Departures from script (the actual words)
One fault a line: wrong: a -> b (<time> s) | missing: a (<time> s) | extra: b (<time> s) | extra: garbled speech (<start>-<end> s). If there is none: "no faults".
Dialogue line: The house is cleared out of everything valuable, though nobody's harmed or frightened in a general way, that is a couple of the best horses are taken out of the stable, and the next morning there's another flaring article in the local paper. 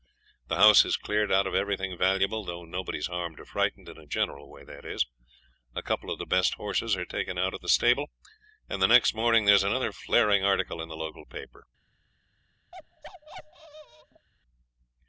no faults